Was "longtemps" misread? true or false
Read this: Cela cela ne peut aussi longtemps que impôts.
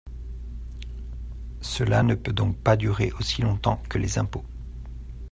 false